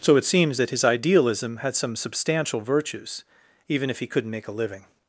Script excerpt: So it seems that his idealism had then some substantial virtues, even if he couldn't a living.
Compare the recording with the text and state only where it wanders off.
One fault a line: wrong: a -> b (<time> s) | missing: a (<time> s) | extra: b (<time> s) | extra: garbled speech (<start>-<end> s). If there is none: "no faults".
missing: then (1.8 s)
extra: make (4.3 s)